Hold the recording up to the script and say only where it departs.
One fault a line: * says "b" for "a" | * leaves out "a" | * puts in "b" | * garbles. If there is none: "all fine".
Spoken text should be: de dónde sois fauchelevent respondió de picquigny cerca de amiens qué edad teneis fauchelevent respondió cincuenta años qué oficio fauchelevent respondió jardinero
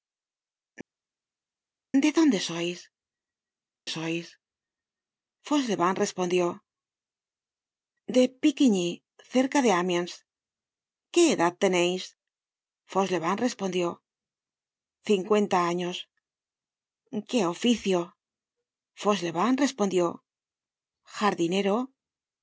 * puts in "sois"